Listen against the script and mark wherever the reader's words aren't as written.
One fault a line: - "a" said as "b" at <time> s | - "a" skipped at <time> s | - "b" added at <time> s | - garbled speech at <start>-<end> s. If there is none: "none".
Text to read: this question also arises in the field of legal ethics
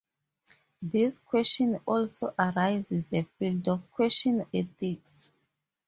- "in" skipped at 3.1 s
- "legal" said as "question" at 3.8 s